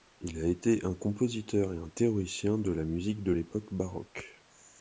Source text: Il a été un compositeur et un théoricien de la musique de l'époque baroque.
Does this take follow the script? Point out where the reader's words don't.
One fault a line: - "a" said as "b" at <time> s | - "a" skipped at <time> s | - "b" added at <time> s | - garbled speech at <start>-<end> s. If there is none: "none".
none